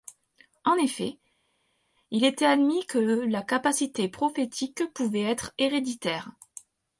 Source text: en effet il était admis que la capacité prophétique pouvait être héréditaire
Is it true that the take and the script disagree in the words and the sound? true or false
false